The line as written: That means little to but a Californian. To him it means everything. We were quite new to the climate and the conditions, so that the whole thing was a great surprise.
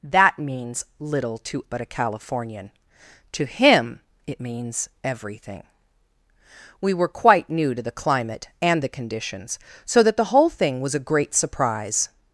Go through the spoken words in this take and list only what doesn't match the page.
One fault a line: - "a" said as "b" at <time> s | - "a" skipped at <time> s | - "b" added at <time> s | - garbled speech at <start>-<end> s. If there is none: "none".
none